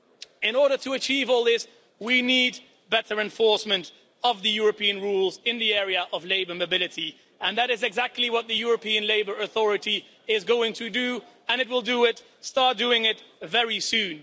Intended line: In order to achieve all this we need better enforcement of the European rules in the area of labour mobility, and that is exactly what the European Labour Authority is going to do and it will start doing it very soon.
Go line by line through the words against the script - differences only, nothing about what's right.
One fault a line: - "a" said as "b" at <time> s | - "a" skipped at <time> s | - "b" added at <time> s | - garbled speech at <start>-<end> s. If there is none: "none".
none